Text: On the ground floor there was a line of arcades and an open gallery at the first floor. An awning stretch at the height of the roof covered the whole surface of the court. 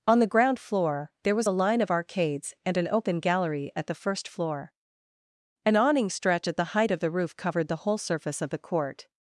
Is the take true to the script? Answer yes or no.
yes